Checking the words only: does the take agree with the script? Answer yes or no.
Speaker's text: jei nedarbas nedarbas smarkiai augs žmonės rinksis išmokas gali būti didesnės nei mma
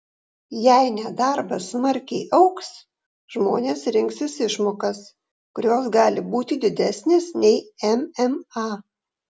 no